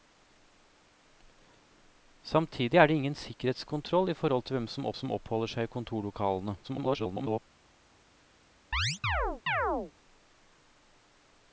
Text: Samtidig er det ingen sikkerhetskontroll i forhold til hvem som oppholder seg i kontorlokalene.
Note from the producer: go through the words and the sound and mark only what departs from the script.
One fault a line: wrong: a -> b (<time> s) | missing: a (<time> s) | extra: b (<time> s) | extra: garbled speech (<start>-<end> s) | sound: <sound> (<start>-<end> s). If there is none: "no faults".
extra: som (4.9 s)
extra: garbled speech (6.6-7.4 s)
sound: chirp (8.7-9.9 s)